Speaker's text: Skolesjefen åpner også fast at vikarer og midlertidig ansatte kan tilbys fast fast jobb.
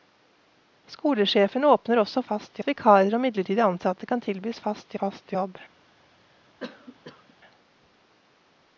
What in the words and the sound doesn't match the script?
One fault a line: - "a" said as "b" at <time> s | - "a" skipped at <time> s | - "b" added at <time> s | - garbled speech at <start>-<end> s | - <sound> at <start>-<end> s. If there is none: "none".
- cough at 6.6-7.3 s